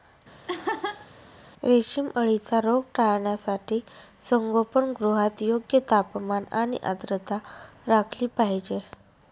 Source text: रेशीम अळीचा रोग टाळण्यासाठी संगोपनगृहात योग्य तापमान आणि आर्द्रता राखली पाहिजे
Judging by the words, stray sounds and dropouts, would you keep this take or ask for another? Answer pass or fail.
fail